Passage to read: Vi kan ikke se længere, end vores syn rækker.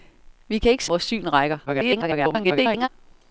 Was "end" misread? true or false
true